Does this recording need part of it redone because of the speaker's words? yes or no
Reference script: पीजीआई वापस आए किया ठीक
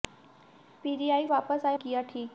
no